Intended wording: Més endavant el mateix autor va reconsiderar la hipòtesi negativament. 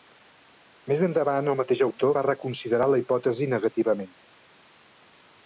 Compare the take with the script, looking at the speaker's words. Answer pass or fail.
pass